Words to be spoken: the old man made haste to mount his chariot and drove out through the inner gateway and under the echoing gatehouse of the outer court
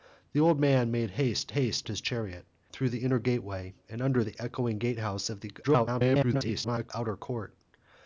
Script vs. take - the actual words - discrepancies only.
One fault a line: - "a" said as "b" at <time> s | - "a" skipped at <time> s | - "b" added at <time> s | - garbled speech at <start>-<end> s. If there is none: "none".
- "mount" said as "haste" at 1.5 s
- "and drove out" skipped at 2.5 s
- garbled speech at 5.6-6.9 s